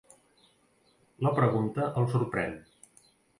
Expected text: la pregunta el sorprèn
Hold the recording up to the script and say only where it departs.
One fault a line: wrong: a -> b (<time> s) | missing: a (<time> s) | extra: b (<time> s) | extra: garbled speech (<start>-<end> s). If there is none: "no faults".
no faults